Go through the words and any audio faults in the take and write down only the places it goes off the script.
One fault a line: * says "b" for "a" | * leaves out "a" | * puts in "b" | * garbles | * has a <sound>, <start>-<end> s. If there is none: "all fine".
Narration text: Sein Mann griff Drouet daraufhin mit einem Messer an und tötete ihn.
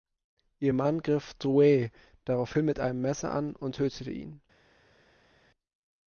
* says "Ihr" for "Sein"